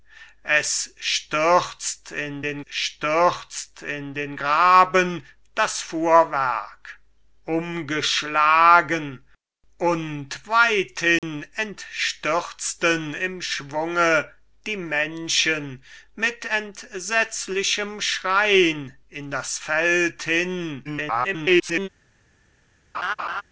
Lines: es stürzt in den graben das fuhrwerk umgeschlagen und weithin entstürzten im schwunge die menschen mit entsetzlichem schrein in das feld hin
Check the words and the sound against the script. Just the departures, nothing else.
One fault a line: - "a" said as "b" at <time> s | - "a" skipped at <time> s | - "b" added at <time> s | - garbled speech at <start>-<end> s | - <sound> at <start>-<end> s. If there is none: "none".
- "stürzt in den" added at 2.7 s
- dropout at 11.2-11.2 s
- garbled speech at 20.9-21.9 s
- laugh at 22.9-23.4 s